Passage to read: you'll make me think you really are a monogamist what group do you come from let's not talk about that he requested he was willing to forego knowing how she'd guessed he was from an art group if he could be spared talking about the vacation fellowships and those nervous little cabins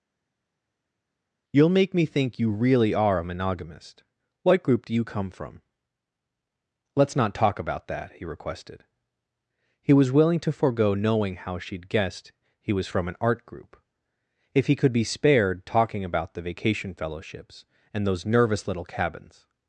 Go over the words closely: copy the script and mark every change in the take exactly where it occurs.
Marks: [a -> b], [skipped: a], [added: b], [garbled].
you'll make me think you really are a monogamist what group do you come from let's not talk about that he requested he was willing to forego knowing how she'd guessed he was from an art group if he could be spared talking about the vacation fellowships and those nervous little cabins